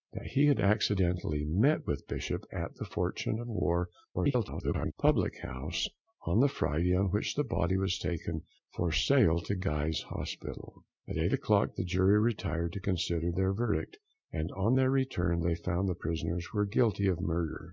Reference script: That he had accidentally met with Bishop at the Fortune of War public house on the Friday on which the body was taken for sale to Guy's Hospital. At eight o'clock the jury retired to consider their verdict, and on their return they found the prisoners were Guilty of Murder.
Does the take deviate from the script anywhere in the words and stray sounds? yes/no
yes